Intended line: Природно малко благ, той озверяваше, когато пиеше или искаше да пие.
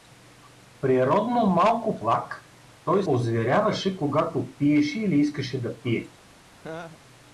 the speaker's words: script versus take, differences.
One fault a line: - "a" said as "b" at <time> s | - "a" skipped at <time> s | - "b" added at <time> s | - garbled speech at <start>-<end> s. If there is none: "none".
none